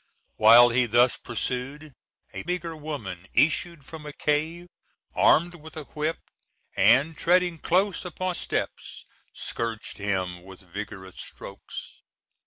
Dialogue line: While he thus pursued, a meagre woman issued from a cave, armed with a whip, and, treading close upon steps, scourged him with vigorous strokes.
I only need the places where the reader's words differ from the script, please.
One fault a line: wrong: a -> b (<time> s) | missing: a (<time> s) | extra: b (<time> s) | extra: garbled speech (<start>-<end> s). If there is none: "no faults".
no faults